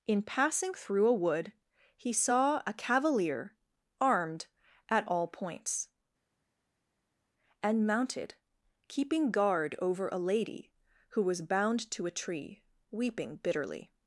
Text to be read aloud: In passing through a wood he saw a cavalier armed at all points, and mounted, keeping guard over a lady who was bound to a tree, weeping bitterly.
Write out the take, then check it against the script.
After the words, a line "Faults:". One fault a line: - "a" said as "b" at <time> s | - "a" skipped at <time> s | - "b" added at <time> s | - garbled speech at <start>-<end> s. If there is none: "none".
In passing through a wood he saw a cavalier armed at all points, and mounted, keeping guard over a lady who was bound to a tree, weeping bitterly.
Faults:
none